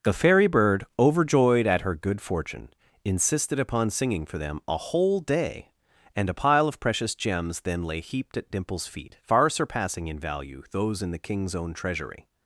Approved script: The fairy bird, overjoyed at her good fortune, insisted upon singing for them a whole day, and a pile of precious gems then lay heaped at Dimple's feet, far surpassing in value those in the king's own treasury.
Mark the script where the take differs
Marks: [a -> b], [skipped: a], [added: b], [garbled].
The fairy bird, overjoyed at her good fortune, insisted upon singing for them a whole day, and a pile of precious gems then lay heaped at Dimple's feet, far surpassing in value those in the king's own treasury.